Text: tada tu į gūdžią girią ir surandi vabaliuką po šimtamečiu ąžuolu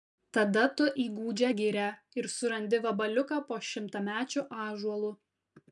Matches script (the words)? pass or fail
pass